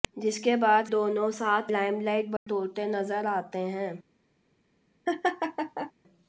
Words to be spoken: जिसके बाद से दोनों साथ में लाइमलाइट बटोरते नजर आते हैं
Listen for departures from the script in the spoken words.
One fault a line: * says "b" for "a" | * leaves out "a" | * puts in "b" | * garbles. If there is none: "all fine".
* leaves out "से"
* leaves out "में"